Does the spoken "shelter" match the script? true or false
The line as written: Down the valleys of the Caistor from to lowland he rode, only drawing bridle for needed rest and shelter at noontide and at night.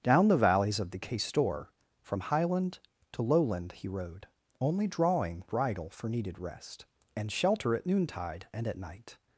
true